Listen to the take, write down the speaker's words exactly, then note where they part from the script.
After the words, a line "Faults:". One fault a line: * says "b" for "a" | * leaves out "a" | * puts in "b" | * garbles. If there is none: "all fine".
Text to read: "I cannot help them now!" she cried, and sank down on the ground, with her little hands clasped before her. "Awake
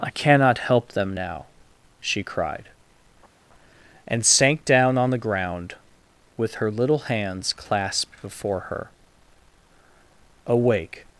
"I cannot help them now!" she cried, and sank down on the ground, with her little hands clasped before her. "Awake
Faults:
all fine